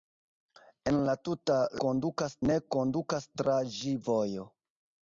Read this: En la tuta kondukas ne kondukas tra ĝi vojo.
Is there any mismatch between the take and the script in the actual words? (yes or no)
no